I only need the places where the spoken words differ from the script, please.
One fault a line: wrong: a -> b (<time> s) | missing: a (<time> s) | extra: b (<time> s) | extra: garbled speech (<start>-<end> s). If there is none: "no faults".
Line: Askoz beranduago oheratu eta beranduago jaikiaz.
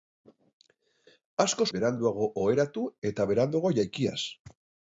no faults